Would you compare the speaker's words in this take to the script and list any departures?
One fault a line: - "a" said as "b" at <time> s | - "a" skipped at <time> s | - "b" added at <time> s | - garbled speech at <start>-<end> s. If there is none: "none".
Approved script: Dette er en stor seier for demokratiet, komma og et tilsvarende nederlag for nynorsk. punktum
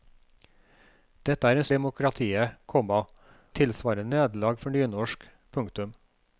- "stor seier for" skipped at 1.7 s
- "og" skipped at 3.0 s